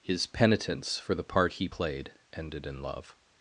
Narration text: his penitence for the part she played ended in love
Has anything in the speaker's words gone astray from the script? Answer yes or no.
yes